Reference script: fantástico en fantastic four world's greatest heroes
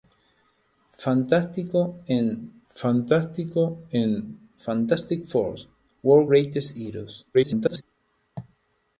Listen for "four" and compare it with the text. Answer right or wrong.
right